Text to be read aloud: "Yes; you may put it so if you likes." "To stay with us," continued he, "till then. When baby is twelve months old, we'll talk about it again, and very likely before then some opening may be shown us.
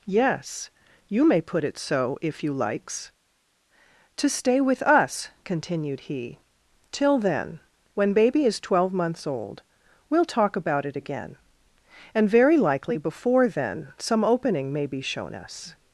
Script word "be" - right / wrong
right